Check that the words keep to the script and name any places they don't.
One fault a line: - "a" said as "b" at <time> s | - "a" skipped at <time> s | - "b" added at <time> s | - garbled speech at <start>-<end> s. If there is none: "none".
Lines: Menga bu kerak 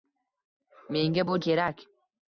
none